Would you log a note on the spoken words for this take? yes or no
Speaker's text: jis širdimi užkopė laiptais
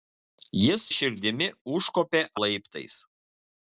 no